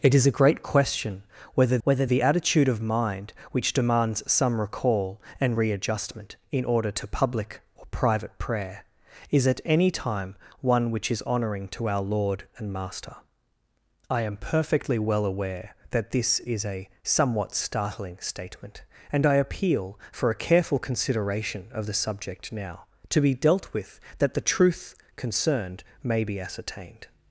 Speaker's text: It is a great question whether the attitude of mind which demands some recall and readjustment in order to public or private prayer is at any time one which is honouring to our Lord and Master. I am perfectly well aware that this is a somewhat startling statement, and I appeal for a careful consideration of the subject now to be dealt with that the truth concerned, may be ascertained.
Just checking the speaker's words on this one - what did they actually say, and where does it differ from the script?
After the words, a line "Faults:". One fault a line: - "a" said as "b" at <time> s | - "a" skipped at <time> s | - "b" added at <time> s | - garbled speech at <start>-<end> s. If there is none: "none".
It is a great question whether whether the attitude of mind which demands some recall and readjustment in order to public or private prayer is at any time one which is honouring to our Lord and Master. I am perfectly well aware that this is a somewhat startling statement, and I appeal for a careful consideration of the subject now to be dealt with that the truth concerned, may be ascertained.
Faults:
- "whether" added at 1.8 s